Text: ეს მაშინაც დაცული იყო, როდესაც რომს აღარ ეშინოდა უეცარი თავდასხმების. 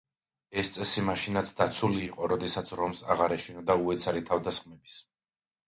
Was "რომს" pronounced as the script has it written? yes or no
yes